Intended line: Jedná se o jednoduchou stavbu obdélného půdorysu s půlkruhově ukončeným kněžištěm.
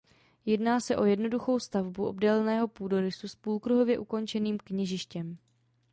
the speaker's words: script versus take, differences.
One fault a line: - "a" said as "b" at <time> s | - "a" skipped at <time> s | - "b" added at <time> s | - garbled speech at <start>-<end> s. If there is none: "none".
none